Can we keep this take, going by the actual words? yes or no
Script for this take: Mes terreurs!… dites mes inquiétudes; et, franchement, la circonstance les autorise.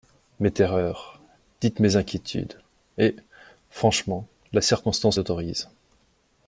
no